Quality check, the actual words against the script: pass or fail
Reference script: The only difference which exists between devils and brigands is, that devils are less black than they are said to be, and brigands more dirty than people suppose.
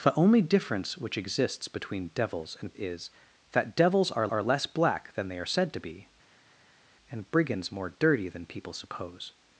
fail